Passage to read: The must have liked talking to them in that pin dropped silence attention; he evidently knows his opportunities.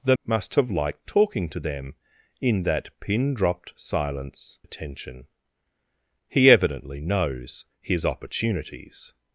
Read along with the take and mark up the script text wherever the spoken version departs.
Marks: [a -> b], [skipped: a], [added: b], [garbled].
The must have liked talking to them in that pin dropped silence attention; he evidently knows his opportunities.